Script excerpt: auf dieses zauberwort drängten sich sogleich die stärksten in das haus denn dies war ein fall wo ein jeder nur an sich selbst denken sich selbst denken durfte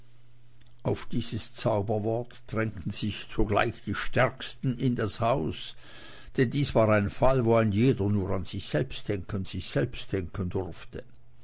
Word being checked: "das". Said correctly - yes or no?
yes